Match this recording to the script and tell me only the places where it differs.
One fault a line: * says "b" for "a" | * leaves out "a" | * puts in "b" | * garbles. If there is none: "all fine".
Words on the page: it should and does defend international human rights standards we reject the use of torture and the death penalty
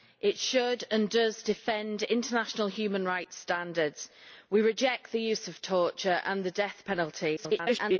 * garbles